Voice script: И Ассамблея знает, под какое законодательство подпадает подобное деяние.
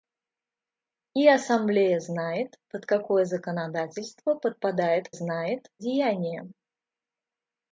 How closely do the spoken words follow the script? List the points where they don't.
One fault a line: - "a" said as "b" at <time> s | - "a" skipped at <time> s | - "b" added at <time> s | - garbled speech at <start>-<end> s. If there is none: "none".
- "подобное" said as "знает" at 5.1 s